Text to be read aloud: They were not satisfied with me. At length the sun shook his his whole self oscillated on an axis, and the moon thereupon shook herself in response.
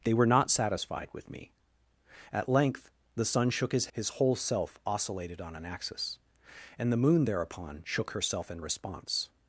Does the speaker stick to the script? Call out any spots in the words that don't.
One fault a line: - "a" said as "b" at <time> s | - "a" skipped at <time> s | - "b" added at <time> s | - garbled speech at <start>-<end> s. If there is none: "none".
none